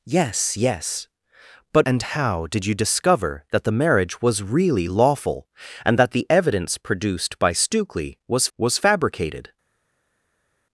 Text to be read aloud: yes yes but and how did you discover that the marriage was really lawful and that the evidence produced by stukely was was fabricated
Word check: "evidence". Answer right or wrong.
right